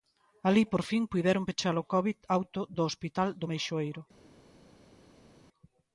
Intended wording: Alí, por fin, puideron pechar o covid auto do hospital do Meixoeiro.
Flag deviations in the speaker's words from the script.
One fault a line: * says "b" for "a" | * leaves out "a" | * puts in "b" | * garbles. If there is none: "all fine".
all fine